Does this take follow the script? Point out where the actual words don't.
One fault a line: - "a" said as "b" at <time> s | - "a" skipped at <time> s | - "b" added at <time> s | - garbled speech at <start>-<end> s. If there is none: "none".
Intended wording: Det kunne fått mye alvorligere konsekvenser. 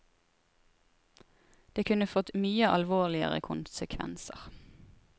none